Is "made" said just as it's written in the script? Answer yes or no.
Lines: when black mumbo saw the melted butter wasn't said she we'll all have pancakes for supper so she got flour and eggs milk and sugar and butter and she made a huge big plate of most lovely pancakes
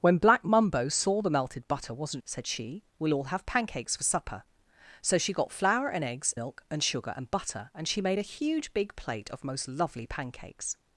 yes